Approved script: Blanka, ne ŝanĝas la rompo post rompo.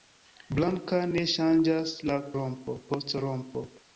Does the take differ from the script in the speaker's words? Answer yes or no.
no